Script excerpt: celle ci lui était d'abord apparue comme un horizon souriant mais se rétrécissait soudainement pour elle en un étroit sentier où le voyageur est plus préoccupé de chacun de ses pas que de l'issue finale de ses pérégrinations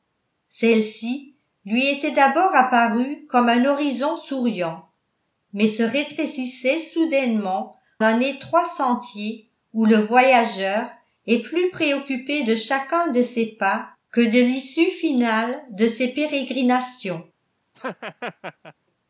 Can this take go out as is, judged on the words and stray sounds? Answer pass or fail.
fail